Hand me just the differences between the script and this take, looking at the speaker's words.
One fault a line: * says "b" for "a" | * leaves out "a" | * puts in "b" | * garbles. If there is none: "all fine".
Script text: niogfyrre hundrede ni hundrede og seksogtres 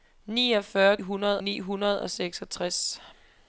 all fine